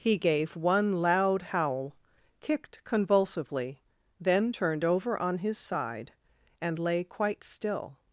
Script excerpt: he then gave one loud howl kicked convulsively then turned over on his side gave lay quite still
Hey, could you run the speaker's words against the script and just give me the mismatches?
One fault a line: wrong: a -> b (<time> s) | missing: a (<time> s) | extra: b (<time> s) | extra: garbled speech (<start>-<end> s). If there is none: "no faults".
missing: then (0.2 s)
wrong: gave -> and (6.6 s)